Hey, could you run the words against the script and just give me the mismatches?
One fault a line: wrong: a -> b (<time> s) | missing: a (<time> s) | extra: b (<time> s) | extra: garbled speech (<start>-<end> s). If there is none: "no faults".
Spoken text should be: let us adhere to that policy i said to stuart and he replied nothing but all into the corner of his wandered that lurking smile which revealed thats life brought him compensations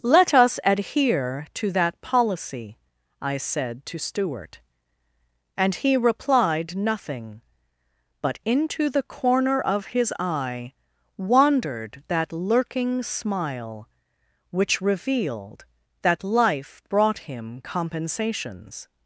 missing: all (8.4 s)
extra: eye (10.2 s)
wrong: thats -> that (16.0 s)